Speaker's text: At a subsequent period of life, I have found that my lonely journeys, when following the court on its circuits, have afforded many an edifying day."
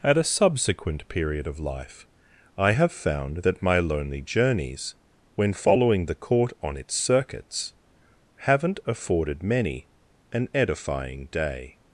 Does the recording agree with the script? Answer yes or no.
no